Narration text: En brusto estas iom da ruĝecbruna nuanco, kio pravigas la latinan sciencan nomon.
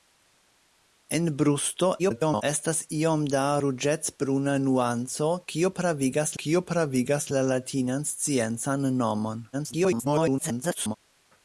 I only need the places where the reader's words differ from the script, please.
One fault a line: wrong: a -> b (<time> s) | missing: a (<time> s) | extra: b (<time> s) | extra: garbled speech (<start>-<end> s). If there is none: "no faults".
extra: garbled speech (2.0-2.4 s)
extra: kio pravigas (6.4 s)
extra: garbled speech (9.5-11.0 s)